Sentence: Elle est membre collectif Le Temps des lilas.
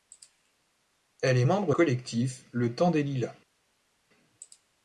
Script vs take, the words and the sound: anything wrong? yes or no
no